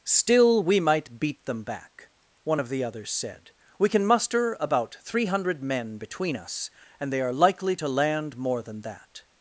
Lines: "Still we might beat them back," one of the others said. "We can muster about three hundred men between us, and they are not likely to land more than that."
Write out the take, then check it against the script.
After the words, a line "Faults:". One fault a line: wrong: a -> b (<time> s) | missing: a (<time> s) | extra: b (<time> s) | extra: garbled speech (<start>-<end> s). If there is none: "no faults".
"Still we might beat them back," one of the others said. "We can muster about three hundred men between us, and they are likely to land more than that."
Faults:
missing: not (7.3 s)